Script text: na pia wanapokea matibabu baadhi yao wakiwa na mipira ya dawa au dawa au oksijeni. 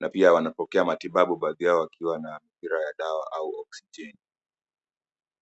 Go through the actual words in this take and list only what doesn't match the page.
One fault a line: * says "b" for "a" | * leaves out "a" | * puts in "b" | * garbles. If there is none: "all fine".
* leaves out "dawa au"